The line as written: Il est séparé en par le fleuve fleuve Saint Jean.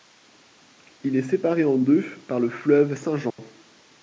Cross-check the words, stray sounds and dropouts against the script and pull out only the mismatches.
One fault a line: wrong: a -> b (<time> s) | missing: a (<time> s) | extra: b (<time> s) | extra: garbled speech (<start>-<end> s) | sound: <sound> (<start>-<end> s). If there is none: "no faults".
extra: deux (1.8 s)
missing: fleuve (3.0 s)
sound: dropout (3.3-3.4 s)